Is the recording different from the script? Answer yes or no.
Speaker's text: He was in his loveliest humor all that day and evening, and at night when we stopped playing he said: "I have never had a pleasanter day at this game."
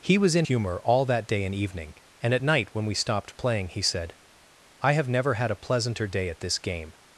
yes